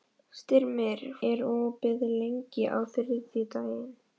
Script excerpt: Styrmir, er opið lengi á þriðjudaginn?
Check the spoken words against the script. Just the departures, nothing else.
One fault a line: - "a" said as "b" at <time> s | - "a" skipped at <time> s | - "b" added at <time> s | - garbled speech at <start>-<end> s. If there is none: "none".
none